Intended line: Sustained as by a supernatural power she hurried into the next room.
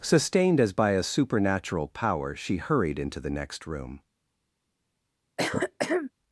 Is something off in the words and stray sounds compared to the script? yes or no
yes